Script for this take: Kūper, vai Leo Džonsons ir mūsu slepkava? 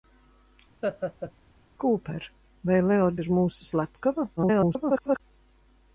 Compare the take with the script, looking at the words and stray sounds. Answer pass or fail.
fail